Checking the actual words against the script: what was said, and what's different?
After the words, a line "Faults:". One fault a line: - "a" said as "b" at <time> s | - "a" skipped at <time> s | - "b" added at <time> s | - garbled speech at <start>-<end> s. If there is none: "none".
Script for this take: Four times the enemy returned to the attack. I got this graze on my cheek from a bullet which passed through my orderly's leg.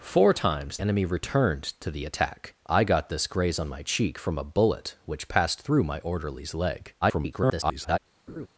Four times enemy returned to the attack. I got this graze on my cheek from a bullet which passed through my orderly's leg. [garbled]
Faults:
- "the" skipped at 0.8 s
- garbled speech at 7.0-8.0 s